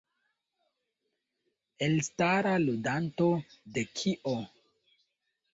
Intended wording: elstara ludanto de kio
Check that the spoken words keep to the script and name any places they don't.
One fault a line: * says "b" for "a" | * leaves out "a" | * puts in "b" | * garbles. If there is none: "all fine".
all fine